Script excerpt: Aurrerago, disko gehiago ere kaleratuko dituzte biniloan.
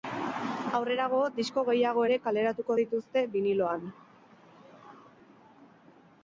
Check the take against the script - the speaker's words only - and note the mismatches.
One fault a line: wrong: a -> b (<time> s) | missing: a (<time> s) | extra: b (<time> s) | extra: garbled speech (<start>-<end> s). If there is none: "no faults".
no faults